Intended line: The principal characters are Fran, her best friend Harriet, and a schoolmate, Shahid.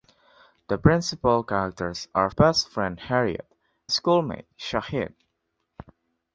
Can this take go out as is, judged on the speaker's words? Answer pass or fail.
fail